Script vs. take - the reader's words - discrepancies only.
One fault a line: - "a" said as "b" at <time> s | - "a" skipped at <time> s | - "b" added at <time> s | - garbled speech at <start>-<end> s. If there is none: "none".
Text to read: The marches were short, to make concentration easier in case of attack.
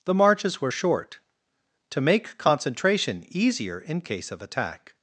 none